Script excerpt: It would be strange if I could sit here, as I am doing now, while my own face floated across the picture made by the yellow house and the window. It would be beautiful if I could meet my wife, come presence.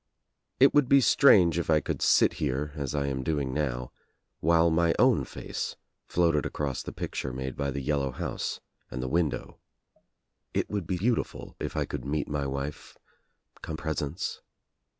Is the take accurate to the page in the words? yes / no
yes